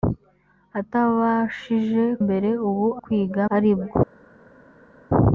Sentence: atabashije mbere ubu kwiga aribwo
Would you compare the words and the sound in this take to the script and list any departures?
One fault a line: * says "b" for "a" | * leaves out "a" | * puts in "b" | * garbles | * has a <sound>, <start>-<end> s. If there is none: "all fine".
all fine